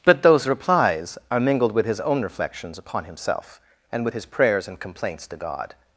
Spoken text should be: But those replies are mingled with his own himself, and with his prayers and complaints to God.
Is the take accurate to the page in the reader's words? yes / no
no